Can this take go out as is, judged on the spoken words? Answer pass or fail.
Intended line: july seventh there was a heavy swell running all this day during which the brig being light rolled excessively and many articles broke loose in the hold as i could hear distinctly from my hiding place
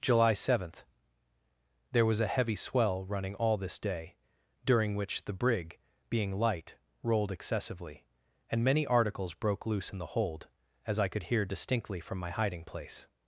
pass